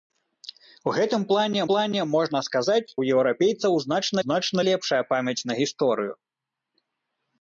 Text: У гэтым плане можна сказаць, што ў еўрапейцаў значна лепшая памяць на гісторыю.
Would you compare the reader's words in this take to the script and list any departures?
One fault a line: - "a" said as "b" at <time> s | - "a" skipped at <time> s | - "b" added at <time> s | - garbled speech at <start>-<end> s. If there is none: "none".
- "плане" added at 1.7 s
- "што" skipped at 2.9 s
- "значна" added at 4.2 s